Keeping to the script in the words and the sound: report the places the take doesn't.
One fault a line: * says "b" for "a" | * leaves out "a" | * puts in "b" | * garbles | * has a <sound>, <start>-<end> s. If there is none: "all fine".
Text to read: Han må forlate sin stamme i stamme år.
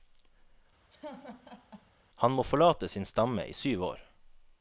* has a laugh, 0.9-1.9 s
* says "syv" for "stamme"